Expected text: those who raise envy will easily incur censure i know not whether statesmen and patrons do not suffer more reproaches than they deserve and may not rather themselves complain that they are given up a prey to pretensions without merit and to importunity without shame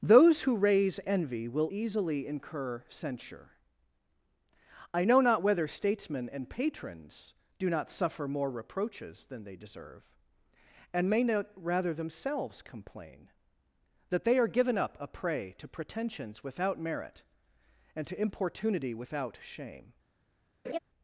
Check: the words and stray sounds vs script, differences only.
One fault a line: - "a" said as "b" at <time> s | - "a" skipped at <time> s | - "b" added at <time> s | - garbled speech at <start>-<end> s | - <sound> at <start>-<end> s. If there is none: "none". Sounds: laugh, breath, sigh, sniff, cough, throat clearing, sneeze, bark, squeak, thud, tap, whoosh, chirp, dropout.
- laugh at 20.6-20.8 s